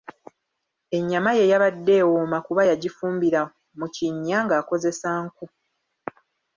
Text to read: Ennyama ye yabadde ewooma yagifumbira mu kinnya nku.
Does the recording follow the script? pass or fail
fail